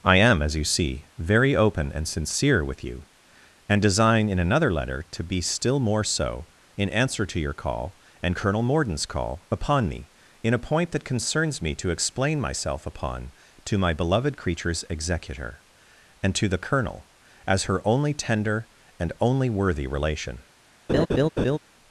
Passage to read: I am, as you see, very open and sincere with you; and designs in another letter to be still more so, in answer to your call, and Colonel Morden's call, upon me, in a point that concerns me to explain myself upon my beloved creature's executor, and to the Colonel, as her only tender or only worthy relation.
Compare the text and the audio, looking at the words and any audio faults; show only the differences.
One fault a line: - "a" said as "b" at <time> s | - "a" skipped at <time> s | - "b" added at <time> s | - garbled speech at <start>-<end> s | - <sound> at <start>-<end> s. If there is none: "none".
- "designs" said as "design" at 3.8 s
- "to" added at 13.7 s
- "or" said as "and" at 19.0 s
- laugh at 20.9-21.6 s